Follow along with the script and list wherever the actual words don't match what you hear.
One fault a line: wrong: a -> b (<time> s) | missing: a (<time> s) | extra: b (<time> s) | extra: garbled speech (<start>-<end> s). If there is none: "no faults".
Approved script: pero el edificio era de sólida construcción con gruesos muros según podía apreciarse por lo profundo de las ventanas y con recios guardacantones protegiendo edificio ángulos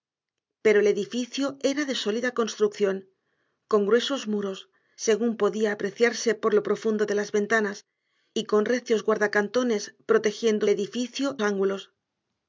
no faults